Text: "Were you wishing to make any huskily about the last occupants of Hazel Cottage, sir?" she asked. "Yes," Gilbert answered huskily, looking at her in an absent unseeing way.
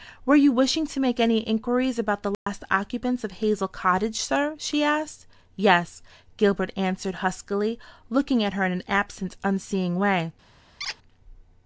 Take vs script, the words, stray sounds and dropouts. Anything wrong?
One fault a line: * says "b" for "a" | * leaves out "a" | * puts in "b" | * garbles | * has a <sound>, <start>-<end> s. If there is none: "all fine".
* says "inquiries" for "huskily"
* has a dropout, 2.3-2.5 s
* has a squeak, 10.8-11.0 s